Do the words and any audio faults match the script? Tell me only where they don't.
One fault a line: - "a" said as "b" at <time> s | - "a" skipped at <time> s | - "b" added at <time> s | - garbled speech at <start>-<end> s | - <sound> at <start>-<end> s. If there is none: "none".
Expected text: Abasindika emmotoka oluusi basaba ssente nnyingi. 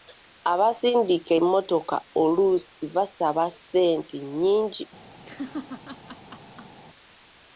- laugh at 5.3-6.8 s